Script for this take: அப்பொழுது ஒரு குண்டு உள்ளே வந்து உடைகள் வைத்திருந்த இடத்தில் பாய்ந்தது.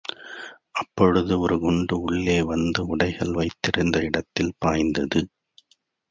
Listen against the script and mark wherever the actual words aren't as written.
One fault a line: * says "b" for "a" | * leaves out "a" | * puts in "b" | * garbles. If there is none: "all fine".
all fine